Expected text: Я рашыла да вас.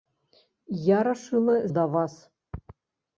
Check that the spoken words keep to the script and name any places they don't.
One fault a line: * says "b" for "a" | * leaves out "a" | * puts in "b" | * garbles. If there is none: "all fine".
all fine